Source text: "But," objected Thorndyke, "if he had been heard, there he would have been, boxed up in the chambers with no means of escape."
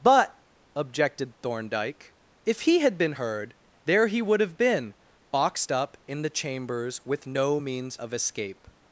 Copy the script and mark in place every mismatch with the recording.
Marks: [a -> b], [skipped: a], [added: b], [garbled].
"But," objected Thorndyke, "if he had been heard, there he would have been, boxed up in the chambers with no means of escape."